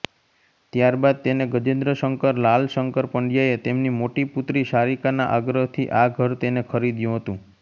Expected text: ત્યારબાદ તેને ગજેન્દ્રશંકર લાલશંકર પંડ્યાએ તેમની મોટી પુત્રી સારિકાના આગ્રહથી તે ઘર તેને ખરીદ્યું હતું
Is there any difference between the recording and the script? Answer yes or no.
yes